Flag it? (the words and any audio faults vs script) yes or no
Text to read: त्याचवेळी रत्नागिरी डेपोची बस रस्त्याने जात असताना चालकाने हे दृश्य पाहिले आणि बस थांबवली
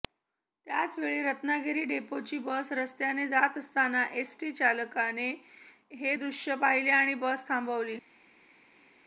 yes